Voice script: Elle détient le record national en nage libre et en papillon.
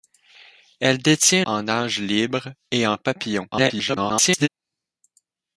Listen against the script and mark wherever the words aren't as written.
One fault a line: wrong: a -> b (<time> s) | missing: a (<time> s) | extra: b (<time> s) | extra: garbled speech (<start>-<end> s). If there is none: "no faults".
missing: le record national (1.4 s)
extra: garbled speech (3.5-4.5 s)